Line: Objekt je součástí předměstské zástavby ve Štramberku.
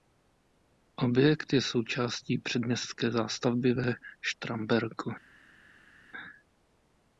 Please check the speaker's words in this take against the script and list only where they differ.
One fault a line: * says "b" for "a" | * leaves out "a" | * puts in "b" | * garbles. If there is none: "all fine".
all fine